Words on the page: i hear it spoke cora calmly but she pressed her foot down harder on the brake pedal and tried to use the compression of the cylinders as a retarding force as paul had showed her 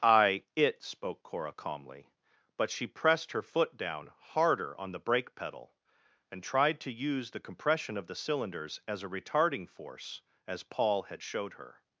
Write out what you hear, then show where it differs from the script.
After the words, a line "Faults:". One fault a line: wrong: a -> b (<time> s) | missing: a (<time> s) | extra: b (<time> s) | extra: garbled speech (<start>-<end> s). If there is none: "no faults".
i it spoke cora calmly but she pressed her foot down harder on the brake pedal and tried to use the compression of the cylinders as a retarding force as paul had showed her
Faults:
missing: hear (0.5 s)